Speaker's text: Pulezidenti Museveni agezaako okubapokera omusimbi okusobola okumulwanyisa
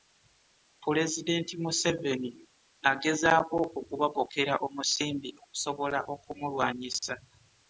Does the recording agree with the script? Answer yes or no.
yes